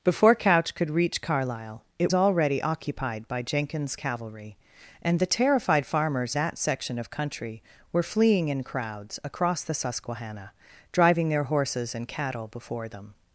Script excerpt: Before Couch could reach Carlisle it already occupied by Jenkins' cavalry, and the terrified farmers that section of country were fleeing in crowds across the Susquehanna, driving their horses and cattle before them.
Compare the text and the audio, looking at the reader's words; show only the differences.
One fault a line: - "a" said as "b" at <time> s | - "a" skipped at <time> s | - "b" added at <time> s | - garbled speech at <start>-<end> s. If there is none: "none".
none